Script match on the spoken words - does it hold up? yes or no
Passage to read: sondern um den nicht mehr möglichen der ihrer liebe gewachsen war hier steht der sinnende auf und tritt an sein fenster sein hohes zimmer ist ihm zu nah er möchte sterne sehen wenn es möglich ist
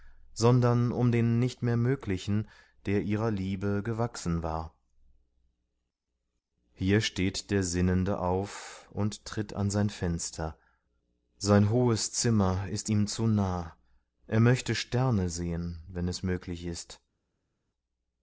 yes